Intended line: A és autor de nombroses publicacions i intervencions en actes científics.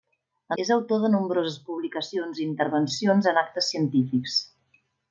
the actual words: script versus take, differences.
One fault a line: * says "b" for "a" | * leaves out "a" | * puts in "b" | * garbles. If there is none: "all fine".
all fine